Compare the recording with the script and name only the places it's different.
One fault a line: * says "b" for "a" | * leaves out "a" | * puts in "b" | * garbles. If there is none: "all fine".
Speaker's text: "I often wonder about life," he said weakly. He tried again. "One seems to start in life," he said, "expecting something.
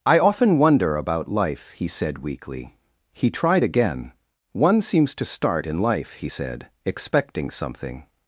all fine